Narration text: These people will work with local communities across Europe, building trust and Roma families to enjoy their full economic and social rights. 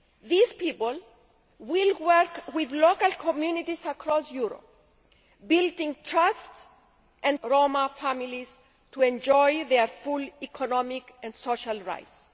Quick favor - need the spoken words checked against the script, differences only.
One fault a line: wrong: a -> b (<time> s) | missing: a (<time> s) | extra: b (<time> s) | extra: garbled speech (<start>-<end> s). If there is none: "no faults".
no faults